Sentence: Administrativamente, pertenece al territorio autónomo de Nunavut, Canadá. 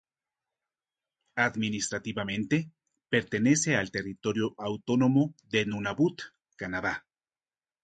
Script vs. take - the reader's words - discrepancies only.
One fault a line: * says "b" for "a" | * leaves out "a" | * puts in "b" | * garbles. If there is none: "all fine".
all fine